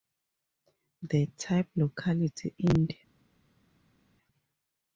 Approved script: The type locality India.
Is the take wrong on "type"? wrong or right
right